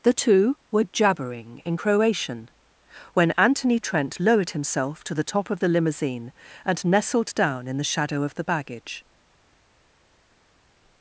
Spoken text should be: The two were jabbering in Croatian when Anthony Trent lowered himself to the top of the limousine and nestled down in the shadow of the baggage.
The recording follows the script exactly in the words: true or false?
true